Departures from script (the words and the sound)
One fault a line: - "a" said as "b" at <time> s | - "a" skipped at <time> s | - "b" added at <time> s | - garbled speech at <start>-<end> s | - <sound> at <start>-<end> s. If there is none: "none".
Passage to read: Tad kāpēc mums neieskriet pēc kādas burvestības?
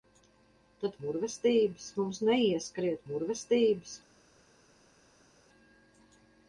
- "kāpēc" said as "burvestības" at 1.0 s
- "pēc kādas" skipped at 3.0 s